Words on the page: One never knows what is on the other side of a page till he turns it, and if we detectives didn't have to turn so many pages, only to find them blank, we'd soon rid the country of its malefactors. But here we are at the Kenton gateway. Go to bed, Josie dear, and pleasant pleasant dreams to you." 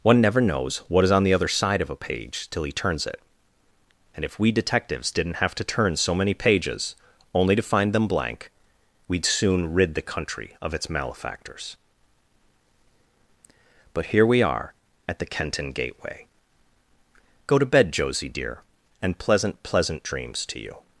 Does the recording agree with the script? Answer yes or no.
yes